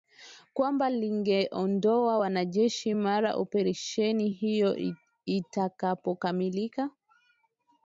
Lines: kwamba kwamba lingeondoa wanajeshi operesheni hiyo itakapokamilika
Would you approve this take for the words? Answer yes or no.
no